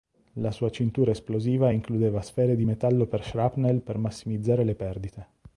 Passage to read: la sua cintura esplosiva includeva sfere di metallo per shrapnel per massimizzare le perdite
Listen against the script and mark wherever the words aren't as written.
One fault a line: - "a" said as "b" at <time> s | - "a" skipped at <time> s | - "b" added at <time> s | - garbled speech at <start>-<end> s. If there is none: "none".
none